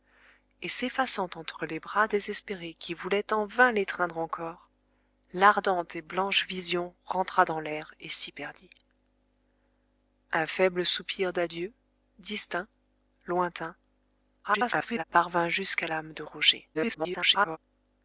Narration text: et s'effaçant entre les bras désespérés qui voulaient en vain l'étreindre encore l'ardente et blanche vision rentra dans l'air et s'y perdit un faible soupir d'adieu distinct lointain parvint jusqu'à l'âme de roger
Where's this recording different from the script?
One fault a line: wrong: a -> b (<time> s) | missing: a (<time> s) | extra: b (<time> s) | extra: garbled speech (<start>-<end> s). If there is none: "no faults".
extra: garbled speech (14.4-15.0 s)
extra: garbled speech (16.7-17.6 s)